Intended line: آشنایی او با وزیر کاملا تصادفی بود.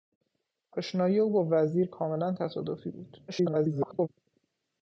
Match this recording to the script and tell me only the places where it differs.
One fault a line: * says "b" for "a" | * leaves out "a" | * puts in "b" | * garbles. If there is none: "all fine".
* garbles